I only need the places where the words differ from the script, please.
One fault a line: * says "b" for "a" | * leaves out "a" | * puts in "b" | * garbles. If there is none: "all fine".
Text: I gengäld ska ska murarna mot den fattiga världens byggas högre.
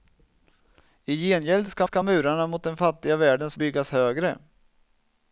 all fine